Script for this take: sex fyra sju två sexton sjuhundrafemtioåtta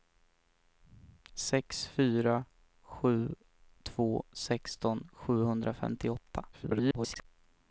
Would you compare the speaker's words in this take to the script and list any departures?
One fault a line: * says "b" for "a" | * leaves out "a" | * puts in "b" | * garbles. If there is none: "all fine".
* garbles